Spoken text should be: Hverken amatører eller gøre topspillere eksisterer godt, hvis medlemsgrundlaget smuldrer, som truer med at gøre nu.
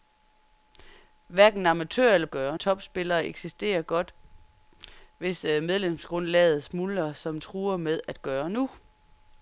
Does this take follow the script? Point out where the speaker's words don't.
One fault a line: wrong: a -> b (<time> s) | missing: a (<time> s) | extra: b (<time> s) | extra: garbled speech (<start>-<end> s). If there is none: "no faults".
no faults